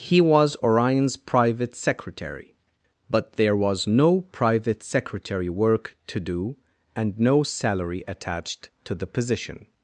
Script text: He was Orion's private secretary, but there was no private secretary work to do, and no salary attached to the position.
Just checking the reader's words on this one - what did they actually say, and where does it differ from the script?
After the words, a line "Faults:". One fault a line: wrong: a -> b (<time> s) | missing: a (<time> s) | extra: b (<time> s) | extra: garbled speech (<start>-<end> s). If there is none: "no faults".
He was Orion's private secretary, but there was no private secretary work to do, and no salary attached to the position.
Faults:
no faults